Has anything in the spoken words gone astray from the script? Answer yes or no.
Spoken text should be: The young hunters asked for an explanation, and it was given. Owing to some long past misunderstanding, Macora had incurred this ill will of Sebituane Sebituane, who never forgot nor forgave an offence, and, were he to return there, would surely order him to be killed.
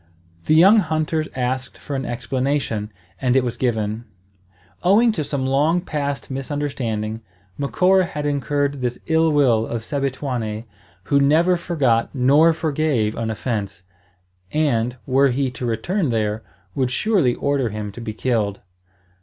yes